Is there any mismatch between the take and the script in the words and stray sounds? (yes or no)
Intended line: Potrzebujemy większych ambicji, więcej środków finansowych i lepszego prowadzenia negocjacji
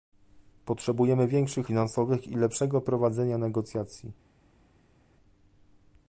yes